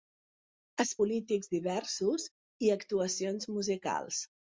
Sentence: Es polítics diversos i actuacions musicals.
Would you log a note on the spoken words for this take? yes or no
no